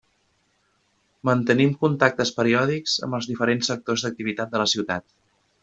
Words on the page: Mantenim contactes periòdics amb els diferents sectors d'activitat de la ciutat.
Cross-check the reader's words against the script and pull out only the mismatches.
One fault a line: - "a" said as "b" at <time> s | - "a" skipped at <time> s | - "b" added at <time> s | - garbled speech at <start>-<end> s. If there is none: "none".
none